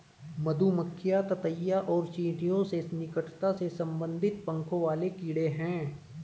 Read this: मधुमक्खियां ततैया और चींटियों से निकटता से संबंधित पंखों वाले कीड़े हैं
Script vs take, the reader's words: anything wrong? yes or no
no